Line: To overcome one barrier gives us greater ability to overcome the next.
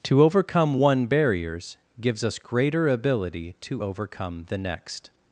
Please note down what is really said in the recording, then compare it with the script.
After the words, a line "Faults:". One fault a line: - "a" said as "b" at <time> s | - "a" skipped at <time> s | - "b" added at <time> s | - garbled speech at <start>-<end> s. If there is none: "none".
To overcome one barriers gives us greater ability to overcome the next.
Faults:
- "barrier" said as "barriers" at 1.1 s